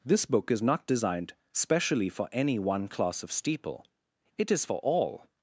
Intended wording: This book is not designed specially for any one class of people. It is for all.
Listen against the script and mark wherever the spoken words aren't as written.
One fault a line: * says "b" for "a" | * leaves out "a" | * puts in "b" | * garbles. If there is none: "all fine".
* says "steeple" for "people"